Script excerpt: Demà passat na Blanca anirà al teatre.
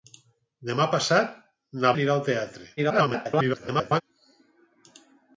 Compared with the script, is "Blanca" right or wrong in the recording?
wrong